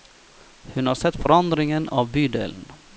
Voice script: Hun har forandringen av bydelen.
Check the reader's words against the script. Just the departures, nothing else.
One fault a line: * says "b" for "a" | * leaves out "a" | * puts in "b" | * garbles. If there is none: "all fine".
* puts in "sett"